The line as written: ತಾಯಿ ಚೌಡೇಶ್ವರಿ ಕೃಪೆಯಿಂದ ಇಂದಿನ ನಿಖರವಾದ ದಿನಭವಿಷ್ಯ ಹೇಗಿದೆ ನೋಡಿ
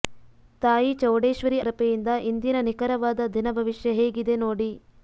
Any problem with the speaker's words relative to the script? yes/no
no